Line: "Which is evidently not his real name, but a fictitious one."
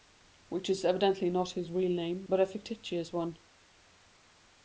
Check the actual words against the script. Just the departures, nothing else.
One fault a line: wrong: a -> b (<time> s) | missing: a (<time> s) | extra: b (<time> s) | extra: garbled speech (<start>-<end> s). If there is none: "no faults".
no faults